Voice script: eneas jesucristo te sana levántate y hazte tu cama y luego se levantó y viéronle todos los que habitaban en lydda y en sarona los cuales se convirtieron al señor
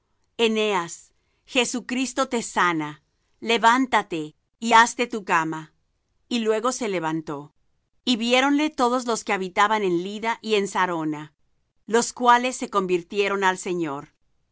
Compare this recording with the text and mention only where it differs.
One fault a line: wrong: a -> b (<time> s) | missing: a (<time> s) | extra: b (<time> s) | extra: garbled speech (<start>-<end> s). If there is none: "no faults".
no faults